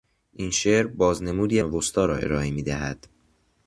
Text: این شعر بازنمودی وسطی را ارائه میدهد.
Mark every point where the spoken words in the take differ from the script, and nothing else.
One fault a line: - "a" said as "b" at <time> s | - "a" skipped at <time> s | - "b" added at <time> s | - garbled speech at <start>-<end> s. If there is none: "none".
none